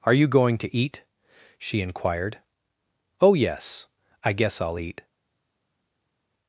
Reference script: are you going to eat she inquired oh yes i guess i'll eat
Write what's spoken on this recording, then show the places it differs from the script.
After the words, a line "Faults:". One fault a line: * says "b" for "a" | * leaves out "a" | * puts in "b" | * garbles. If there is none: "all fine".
are you going to eat she inquired oh yes i guess i'll eat
Faults:
all fine